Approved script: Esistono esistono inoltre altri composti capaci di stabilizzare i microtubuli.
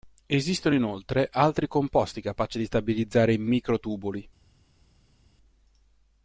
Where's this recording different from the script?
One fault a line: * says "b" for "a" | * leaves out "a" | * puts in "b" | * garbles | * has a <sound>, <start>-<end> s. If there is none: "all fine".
* leaves out "esistono"